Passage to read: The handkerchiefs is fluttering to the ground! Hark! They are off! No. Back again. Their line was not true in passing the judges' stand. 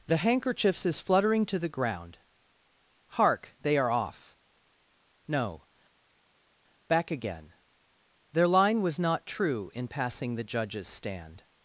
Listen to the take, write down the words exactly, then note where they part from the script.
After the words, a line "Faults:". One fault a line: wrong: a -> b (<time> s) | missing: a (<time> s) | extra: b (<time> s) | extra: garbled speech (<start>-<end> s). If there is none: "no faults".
The handkerchiefs is fluttering to the ground! Hark! They are off! No. Back again. Their line was not true in passing the judges' stand.
Faults:
no faults